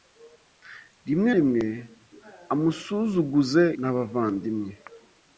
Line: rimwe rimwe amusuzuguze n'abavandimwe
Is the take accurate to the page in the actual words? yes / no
yes